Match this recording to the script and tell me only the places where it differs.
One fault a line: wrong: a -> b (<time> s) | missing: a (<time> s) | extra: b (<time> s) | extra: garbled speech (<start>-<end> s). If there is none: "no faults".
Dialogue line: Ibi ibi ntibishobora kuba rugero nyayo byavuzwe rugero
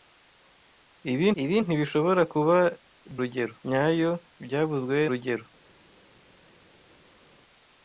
no faults